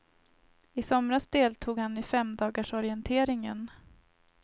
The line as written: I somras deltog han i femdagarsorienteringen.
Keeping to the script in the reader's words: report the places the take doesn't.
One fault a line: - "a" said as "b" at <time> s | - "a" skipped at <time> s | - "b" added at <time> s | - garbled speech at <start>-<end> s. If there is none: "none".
none